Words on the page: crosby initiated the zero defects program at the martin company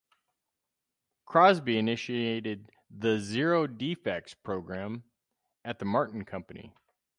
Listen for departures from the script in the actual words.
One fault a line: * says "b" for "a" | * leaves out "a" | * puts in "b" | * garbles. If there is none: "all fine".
all fine